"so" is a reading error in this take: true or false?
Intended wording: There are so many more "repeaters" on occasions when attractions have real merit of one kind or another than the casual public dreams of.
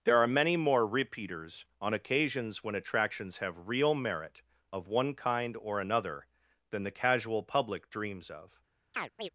true